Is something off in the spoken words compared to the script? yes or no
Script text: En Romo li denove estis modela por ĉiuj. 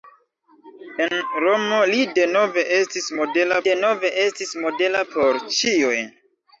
yes